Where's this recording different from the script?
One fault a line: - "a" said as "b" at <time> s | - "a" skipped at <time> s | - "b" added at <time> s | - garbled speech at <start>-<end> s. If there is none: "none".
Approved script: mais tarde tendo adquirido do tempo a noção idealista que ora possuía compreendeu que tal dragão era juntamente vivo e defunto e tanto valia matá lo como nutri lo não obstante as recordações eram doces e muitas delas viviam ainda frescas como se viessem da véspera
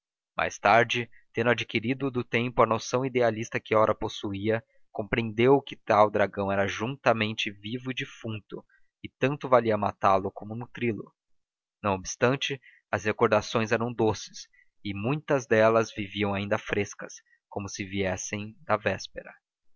none